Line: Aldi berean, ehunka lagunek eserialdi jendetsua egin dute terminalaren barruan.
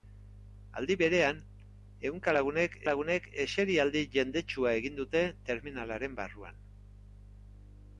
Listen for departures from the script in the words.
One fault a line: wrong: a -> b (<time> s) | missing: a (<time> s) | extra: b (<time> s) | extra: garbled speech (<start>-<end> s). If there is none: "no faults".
extra: lagunek (2.9 s)